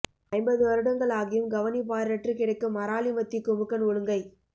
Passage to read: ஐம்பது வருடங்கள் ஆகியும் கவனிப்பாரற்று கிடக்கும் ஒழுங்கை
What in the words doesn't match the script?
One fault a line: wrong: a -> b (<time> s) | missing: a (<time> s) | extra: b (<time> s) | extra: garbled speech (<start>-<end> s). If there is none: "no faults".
extra: அராலி மத்தி குமுக்கன் (2.8 s)